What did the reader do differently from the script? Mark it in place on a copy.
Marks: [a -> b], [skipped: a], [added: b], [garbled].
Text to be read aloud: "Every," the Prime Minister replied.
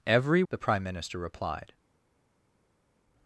"Every," the Prime Minister replied.